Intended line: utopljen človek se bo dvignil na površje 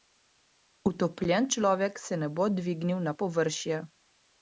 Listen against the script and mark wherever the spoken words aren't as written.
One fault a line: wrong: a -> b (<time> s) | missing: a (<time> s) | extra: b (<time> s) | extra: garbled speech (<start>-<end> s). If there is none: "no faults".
extra: ne (2.2 s)